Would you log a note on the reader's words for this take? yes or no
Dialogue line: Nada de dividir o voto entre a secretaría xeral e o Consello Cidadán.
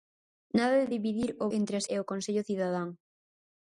yes